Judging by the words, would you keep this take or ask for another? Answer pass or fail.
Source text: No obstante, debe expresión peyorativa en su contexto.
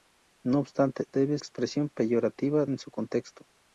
pass